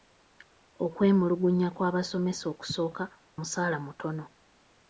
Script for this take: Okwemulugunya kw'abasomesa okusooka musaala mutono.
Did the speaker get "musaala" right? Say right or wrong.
right